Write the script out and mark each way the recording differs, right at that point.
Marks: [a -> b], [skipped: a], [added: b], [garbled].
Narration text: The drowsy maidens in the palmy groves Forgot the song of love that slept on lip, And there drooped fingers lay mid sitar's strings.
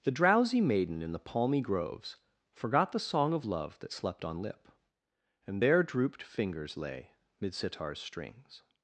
The drowsy [maidens -> maiden] in the palmy groves Forgot the song of love that slept on lip, And there drooped fingers lay mid sitar's strings.